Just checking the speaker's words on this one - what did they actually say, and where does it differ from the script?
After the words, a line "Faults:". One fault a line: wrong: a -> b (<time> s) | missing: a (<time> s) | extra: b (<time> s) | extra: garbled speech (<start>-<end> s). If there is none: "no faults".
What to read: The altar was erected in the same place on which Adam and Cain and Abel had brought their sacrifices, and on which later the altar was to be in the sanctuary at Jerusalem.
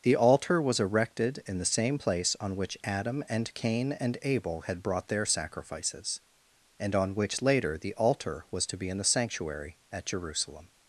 The altar was erected in the same place on which Adam and Cain and Abel had brought their sacrifices, and on which later the altar was to be in the sanctuary at Jerusalem.
Faults:
no faults